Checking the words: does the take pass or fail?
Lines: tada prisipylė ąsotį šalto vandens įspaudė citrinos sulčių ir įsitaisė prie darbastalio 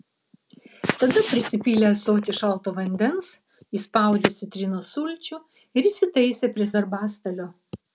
pass